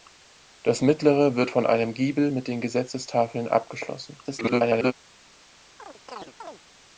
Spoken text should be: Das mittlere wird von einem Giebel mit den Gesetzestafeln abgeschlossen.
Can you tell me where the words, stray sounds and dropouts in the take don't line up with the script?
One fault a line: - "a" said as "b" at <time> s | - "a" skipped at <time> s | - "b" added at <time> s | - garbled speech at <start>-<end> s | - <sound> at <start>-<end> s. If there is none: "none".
- garbled speech at 4.2-4.9 s
- chirp at 5.8-6.6 s